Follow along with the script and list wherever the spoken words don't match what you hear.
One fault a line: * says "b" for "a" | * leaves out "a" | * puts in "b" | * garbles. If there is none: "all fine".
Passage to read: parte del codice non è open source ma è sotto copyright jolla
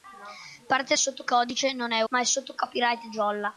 * says "sotto" for "del"
* leaves out "open source"